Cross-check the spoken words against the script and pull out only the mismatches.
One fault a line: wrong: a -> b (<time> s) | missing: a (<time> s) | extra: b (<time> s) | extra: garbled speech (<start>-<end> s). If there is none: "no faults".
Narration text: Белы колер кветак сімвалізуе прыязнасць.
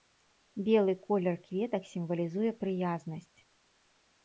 no faults